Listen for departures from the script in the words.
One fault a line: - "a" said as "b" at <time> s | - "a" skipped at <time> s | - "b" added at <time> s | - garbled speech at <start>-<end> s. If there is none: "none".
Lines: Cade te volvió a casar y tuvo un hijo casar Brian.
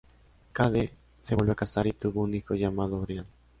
- "te" said as "se" at 1.2 s
- "casar" said as "llamado" at 2.5 s